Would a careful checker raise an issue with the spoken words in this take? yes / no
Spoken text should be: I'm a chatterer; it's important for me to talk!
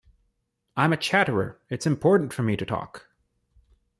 no